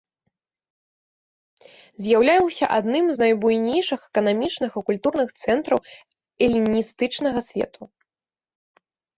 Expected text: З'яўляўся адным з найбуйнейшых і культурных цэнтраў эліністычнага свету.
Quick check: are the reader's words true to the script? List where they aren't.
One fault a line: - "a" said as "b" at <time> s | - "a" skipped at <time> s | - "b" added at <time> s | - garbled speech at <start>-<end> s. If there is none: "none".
- "эканамічных" added at 4.1 s